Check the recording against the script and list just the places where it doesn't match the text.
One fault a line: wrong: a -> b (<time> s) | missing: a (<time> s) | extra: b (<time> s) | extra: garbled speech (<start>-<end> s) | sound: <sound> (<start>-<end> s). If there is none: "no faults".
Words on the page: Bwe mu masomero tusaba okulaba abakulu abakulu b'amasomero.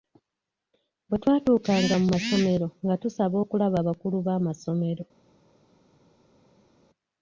extra: twatuukanga (1.2 s)
extra: nga (2.8 s)
missing: abakulu (4.2 s)